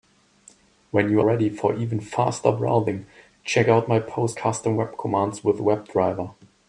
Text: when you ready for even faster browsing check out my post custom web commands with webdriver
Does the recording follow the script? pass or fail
pass